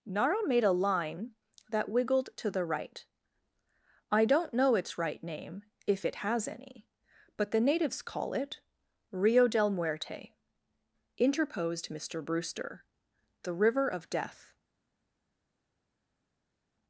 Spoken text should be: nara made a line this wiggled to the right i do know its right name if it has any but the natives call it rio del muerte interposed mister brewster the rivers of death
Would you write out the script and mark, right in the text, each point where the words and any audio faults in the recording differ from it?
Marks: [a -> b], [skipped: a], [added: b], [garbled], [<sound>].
nara made a line [this -> that] wiggled to the right i [do -> don't] know its right name if it has any but the natives call it rio del muerte interposed mister brewster the [rivers -> river] of death